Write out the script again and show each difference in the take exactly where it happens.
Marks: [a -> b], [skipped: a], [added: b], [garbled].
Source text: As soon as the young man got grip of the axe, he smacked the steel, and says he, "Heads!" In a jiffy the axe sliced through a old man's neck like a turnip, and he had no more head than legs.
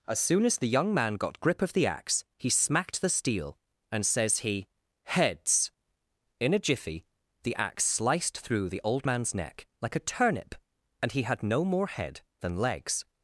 As soon as the young man got grip of the axe, he smacked the steel, and says he, "Heads!" In a jiffy the axe sliced through [a -> the] old man's neck like a turnip, and he had no more head than legs.